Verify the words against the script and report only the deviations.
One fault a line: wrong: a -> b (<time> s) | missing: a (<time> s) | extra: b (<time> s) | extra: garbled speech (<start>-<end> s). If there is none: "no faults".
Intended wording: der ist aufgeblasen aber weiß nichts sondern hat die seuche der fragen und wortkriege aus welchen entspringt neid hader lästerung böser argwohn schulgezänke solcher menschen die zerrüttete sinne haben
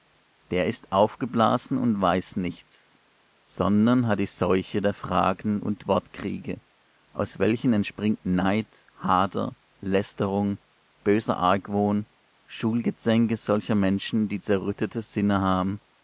wrong: aber -> und (1.8 s)